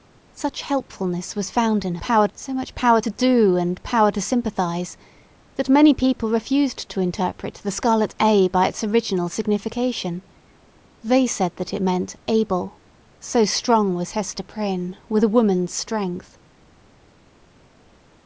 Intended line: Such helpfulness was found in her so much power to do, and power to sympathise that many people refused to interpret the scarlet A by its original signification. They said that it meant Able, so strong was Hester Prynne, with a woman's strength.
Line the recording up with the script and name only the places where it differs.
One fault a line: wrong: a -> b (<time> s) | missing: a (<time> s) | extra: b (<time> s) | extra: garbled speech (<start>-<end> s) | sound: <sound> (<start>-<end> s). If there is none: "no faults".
wrong: her -> power (2.0 s)